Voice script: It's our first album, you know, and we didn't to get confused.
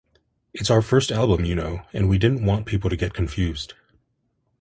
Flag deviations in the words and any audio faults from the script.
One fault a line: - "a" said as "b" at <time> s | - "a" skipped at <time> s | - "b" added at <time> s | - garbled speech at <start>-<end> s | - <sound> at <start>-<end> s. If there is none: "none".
- "want people" added at 2.4 s